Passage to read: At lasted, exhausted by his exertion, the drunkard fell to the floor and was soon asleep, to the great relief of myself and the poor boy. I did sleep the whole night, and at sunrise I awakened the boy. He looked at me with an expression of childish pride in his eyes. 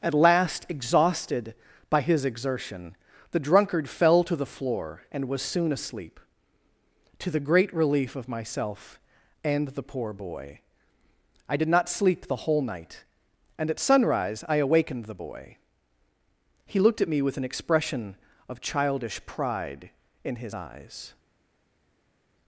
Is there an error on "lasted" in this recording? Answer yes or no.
yes